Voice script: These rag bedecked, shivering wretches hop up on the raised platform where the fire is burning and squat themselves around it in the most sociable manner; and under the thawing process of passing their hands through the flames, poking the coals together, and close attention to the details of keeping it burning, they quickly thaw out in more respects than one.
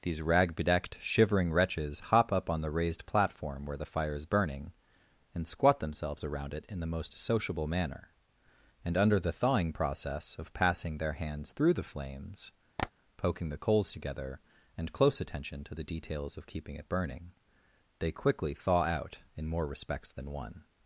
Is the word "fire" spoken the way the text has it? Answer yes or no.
yes